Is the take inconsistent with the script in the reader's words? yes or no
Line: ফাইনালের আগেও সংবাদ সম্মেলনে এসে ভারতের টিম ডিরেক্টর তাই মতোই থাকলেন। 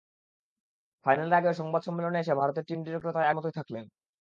no